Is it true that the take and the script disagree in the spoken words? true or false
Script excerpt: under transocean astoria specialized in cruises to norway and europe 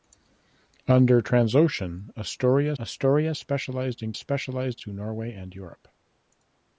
true